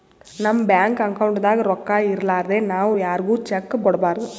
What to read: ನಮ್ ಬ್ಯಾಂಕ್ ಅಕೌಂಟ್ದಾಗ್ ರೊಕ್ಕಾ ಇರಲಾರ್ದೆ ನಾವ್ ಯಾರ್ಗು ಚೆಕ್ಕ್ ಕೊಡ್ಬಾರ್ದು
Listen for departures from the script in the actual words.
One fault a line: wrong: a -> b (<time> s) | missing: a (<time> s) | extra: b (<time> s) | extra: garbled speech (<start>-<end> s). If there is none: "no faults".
no faults